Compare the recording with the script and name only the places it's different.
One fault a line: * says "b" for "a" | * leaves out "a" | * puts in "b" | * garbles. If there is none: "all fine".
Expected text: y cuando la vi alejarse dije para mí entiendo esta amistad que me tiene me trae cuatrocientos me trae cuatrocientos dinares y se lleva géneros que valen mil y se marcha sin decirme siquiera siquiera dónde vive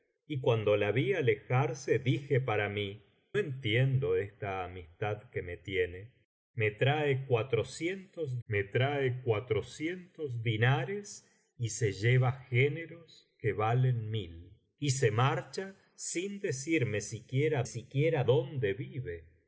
all fine